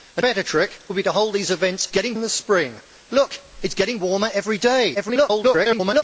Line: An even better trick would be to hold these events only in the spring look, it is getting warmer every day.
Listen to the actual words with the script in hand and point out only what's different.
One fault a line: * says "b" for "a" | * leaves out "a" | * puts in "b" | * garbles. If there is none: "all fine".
* leaves out "even"
* says "getting" for "only"
* garbles